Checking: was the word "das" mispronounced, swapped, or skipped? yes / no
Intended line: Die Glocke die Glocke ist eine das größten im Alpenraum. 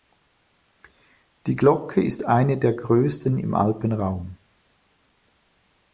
yes